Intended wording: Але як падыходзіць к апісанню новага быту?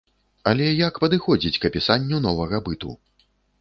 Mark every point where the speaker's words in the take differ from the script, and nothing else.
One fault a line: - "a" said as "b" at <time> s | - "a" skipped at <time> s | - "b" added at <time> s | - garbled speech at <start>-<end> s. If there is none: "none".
none